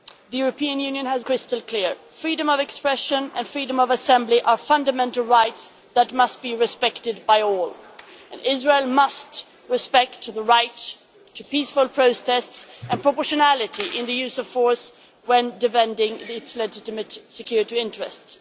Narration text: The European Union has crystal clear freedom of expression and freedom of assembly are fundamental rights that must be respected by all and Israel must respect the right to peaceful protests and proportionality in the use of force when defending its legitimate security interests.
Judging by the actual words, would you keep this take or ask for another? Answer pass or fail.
pass